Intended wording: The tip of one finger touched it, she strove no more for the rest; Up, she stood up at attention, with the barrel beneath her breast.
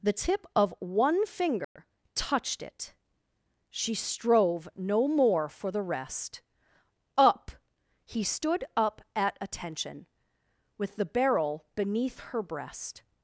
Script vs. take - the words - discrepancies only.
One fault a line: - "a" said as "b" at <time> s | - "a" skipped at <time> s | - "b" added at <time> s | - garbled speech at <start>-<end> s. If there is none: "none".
- "she" said as "he" at 8.1 s